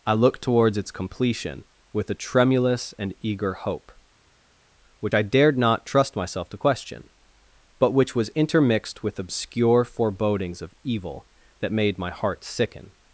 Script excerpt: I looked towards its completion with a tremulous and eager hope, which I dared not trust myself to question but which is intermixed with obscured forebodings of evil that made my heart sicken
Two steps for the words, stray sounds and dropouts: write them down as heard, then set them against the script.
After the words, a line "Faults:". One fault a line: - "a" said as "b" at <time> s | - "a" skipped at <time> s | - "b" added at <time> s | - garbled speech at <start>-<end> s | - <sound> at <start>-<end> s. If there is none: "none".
I looked towards its completion with a tremulous and eager hope, which I dared not trust myself to question but which was intermixed with obscure forebodings of evil that made my heart sicken
Faults:
- "is" said as "was" at 8.1 s
- "obscured" said as "obscure" at 9.2 s